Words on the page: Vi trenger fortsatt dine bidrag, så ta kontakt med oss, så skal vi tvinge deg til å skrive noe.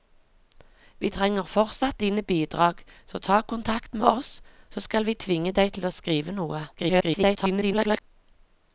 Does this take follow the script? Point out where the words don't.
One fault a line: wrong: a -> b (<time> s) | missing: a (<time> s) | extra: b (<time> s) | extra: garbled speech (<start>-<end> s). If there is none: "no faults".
extra: garbled speech (6.7-8.0 s)